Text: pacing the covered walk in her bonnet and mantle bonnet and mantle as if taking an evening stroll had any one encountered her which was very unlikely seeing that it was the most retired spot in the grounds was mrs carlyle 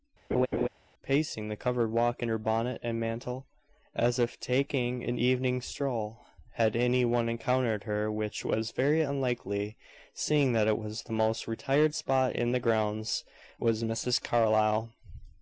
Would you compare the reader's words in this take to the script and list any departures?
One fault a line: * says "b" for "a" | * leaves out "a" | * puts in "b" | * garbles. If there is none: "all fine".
* leaves out "bonnet and mantle"